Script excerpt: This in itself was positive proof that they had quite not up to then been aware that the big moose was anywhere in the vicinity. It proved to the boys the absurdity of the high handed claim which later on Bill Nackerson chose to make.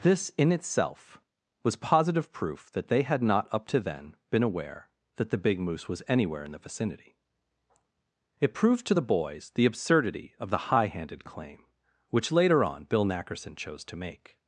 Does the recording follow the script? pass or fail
fail